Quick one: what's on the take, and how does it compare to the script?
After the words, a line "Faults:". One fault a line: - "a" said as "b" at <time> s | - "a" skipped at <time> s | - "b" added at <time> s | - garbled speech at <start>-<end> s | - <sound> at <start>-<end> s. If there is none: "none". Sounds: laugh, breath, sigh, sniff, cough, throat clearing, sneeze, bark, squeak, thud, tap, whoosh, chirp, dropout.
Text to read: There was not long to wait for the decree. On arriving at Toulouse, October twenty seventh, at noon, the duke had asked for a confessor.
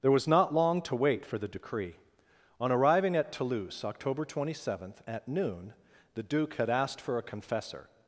There was not long to wait for the decree. On arriving at Toulouse, October twenty seventh, at noon, the duke had asked for a confessor.
Faults:
none